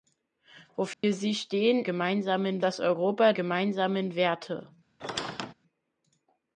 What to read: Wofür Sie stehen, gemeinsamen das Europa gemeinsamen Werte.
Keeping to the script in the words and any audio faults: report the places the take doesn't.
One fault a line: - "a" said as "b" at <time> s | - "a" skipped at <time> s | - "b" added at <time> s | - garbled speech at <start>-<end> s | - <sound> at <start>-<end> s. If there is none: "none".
- dropout at 0.9-1.0 s
- squeak at 5.0-5.5 s